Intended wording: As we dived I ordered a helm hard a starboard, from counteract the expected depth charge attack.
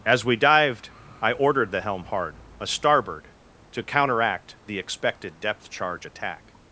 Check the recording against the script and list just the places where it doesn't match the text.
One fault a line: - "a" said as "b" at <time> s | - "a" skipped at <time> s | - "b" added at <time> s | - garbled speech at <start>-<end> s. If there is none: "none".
- "a" said as "the" at 1.7 s
- "from" said as "to" at 3.7 s